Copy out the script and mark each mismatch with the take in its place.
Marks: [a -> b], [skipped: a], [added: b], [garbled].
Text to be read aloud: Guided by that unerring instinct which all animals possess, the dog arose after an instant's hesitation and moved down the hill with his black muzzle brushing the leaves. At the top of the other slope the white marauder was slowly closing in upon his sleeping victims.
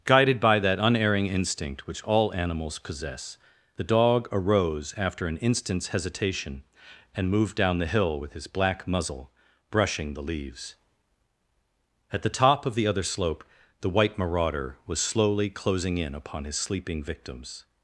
Guided by that unerring instinct which all animals possess, the dog arose after an instant's hesitation and moved down the hill with his black muzzle brushing the leaves. At the top of the other slope the white marauder was slowly closing in upon his sleeping victims.